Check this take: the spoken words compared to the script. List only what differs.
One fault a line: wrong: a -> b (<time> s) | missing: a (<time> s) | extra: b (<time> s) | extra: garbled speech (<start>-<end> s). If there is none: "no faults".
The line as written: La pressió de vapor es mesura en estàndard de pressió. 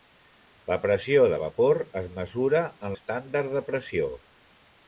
no faults